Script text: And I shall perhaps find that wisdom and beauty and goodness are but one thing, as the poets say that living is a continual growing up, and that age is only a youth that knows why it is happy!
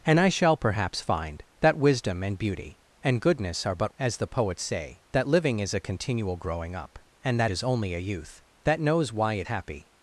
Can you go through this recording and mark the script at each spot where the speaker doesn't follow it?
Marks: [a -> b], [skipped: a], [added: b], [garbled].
And I shall perhaps find that wisdom and beauty and goodness are but [skipped: one thing,] as the poets say that living is a continual growing up, and that [skipped: age] is only a youth that knows why it [skipped: is] happy!